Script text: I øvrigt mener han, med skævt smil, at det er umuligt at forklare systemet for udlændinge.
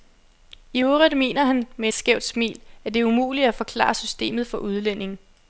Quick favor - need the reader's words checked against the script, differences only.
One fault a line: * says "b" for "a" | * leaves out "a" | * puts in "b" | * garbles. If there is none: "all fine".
all fine